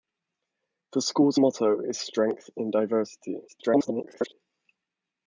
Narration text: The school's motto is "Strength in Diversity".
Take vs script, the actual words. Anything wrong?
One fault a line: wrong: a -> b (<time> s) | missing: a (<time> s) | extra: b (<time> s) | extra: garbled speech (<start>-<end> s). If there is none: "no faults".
extra: garbled speech (3.5-4.3 s)